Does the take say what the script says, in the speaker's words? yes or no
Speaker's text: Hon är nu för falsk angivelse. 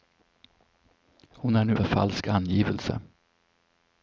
yes